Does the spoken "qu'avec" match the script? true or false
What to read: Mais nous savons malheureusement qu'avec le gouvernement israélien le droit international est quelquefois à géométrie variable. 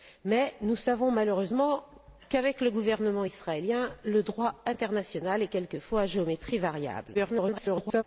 true